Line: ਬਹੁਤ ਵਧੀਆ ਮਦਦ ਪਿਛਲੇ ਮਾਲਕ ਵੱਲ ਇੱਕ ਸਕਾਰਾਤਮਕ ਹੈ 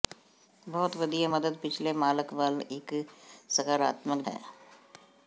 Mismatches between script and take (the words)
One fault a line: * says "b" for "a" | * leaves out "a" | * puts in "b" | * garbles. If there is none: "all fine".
all fine